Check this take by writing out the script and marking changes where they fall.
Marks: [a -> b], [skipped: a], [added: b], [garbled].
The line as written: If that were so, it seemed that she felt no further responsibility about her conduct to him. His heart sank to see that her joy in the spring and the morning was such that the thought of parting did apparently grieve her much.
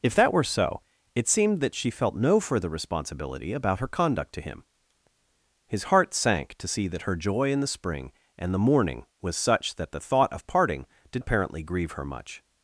If that were so, it seemed that she felt no further responsibility about her conduct to him. His heart sank to see that her joy in the spring and the morning was such that the thought of parting did apparently grieve her much.